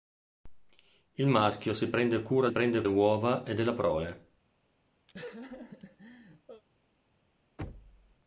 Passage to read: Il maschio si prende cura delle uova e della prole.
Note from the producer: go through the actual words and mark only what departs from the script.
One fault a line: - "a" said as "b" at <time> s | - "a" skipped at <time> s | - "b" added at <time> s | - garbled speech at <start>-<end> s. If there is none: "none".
- "delle" said as "prende" at 2.5 s